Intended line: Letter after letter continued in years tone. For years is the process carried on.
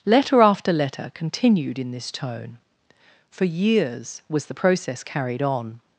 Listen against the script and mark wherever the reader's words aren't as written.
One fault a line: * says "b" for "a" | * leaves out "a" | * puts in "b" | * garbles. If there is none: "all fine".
* says "this" for "years"
* says "was" for "is"